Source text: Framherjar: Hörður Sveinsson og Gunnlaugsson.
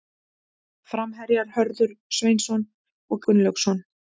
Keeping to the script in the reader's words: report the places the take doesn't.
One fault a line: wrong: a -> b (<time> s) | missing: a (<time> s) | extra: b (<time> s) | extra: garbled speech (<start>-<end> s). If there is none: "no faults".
no faults